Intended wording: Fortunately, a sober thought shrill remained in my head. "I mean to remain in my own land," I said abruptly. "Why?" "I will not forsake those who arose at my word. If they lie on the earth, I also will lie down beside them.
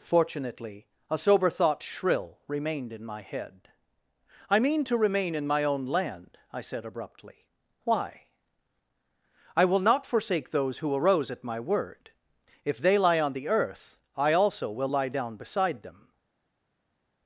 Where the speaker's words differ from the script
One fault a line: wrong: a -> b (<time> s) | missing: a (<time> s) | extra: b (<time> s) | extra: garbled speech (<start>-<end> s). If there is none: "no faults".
no faults